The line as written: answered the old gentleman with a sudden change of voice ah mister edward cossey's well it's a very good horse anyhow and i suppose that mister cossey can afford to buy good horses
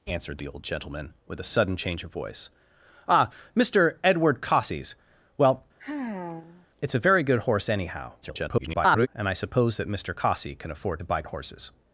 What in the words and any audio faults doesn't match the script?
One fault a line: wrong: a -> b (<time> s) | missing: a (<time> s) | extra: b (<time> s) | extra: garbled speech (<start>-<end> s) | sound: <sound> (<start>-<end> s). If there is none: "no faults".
sound: sigh (5.8-6.7 s)
extra: garbled speech (8.2-9.1 s)
missing: good (11.2 s)